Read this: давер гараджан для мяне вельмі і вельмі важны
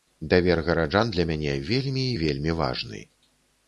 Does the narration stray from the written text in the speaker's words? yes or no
no